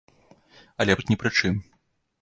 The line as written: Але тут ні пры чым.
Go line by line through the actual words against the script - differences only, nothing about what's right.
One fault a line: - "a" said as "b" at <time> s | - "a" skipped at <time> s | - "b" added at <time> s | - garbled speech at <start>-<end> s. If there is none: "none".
none